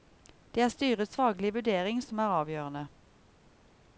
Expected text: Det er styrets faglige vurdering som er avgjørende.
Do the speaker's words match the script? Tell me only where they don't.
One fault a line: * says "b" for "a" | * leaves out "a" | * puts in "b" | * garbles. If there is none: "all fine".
all fine